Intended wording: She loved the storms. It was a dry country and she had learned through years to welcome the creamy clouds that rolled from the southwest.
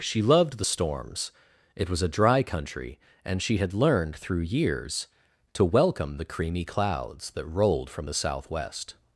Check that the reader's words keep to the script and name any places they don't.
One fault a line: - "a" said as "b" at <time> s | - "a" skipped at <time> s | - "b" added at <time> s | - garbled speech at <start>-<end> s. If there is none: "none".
none